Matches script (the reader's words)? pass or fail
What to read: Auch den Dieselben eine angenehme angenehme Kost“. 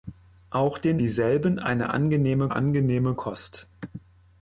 pass